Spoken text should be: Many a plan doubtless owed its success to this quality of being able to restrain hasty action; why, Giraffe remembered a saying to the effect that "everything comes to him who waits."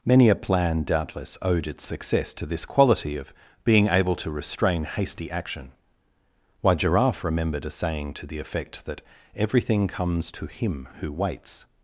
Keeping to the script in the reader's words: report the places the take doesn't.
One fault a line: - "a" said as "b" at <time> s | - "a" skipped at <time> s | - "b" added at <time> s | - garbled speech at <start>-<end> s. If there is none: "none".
none